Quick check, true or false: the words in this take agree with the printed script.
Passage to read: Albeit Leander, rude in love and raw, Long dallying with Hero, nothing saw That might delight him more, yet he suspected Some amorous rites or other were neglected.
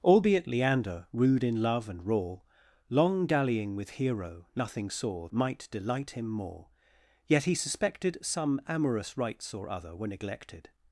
false